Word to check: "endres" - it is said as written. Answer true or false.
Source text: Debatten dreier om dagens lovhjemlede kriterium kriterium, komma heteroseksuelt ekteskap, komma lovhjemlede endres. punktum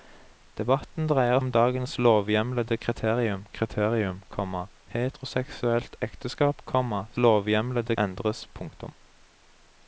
true